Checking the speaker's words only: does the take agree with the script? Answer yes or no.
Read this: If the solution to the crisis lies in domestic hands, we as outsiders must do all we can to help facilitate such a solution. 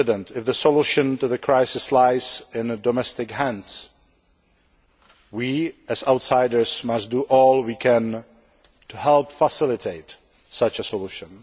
yes